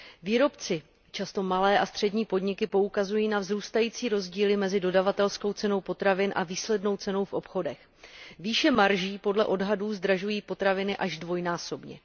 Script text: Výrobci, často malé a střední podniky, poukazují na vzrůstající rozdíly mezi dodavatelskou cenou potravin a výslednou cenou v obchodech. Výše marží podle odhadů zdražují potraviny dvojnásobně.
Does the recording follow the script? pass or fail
fail